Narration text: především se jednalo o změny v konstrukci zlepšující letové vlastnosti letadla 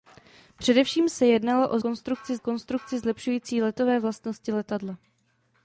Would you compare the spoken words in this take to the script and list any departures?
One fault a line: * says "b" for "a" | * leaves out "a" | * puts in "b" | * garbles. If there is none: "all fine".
* says "konstrukci" for "změny"